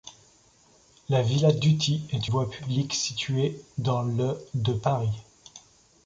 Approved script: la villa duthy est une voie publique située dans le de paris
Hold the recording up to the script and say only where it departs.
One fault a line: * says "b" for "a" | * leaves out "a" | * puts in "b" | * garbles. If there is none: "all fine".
* leaves out "une"